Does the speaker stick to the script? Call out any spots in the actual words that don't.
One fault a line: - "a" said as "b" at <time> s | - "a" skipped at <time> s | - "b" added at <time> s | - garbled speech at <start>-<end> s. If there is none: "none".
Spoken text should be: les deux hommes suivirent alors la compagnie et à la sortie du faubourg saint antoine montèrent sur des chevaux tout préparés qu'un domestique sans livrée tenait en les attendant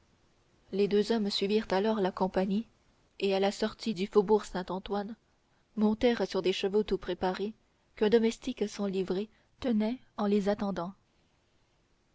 none